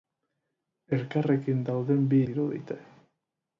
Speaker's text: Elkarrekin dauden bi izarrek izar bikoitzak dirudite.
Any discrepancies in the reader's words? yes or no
yes